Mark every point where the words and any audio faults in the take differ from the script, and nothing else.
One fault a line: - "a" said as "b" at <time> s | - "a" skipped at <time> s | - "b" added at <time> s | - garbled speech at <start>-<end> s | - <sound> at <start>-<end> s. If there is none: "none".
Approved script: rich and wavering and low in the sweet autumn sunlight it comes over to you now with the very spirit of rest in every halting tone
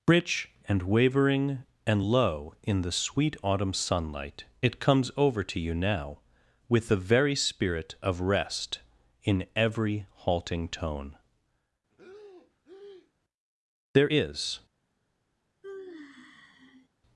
- breath at 11.9-13.1 s
- "there is" added at 13.9 s
- sigh at 15.6-16.9 s